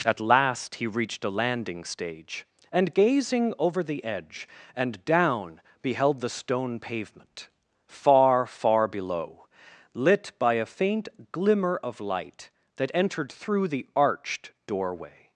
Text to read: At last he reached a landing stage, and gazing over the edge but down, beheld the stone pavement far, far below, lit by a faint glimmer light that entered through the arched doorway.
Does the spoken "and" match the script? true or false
true